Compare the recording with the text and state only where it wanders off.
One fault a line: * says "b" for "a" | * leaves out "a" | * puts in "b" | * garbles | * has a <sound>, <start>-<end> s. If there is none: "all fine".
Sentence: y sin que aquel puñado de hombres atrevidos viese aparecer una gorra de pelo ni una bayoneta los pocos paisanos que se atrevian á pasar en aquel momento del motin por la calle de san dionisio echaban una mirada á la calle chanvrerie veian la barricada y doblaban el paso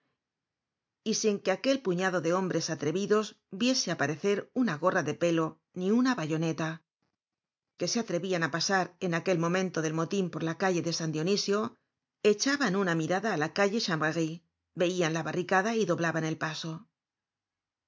* leaves out "los pocos paisanos"